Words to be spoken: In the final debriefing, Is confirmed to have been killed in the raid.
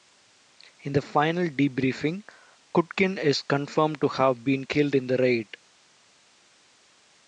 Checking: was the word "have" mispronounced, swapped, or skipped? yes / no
no